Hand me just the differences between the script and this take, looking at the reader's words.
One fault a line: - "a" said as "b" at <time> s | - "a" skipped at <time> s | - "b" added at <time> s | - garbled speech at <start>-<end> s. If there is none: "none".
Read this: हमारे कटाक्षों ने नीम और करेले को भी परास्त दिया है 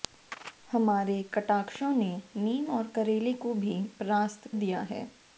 none